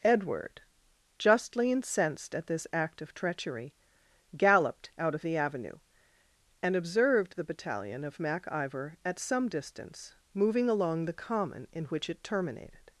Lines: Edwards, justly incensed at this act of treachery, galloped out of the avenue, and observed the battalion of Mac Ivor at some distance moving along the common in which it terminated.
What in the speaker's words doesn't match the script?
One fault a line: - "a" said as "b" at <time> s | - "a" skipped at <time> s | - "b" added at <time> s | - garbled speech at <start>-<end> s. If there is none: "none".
- "Edwards" said as "Edward" at 0.0 s